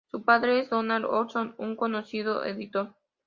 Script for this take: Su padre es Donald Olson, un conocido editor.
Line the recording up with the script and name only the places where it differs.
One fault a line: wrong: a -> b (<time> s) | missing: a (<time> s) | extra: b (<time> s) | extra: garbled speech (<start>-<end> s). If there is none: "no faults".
no faults